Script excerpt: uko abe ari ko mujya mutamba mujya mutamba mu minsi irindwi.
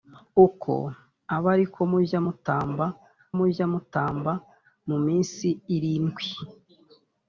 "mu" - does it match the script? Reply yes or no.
yes